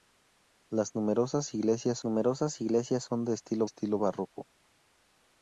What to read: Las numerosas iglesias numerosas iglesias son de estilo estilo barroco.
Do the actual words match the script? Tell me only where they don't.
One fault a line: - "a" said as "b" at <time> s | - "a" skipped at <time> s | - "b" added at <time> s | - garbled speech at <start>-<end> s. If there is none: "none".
none